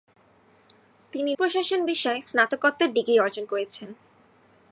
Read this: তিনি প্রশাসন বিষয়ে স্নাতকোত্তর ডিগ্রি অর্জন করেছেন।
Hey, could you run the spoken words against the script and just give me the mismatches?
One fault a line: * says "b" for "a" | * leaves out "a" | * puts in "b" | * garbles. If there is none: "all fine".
all fine